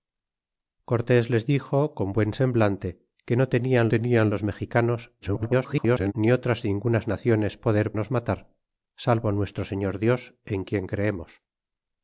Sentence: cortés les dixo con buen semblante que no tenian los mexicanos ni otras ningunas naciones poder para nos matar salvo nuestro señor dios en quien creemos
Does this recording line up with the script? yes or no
no